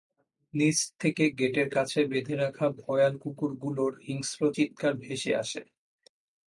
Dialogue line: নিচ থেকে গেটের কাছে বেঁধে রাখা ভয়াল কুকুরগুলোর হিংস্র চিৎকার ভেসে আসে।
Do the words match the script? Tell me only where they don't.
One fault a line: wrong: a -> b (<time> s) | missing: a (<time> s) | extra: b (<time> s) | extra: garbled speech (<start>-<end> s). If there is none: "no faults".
no faults